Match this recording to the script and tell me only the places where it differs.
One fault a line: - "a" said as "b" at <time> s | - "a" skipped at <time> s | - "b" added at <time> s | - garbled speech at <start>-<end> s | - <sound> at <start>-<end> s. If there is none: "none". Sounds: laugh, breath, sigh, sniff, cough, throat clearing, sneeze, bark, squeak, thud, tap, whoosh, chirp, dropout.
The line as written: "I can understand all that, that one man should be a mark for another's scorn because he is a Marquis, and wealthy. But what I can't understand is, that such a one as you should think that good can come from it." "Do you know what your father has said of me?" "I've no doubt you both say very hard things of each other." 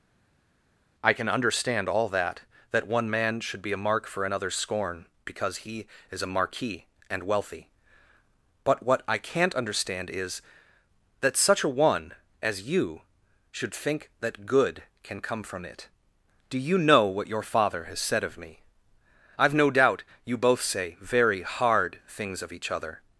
none